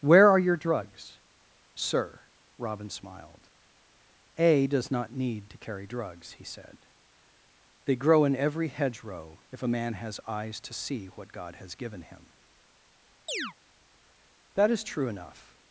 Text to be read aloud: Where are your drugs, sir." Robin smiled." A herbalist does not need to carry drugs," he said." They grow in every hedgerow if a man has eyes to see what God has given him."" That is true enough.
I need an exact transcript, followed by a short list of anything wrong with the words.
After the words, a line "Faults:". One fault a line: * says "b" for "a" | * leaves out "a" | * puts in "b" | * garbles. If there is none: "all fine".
Where are your drugs, sir." Robin smiled." A does not need to carry drugs," he said." They grow in every hedgerow if a man has eyes to see what God has given him."" That is true enough.
Faults:
* leaves out "herbalist"